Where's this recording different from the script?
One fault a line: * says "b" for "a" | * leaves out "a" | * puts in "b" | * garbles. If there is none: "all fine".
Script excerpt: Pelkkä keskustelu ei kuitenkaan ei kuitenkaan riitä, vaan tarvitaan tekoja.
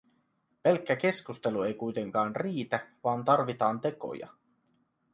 * leaves out "ei kuitenkaan"